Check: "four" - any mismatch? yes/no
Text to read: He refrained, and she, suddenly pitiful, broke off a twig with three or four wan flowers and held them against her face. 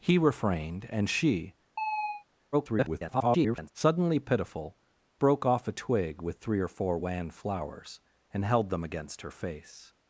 no